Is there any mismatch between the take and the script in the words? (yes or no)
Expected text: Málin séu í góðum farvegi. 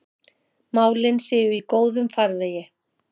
no